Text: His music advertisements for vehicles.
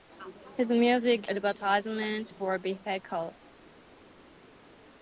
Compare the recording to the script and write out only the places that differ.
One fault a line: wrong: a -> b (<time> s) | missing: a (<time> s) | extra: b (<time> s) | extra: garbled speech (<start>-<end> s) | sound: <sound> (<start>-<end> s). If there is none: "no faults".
no faults